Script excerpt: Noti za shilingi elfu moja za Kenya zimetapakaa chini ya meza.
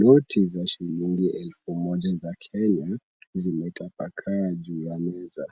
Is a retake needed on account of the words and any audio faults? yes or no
yes